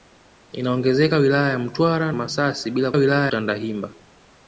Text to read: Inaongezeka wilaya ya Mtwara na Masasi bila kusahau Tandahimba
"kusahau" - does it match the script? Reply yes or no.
no